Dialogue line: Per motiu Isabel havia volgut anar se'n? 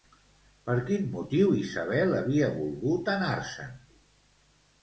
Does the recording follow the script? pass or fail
fail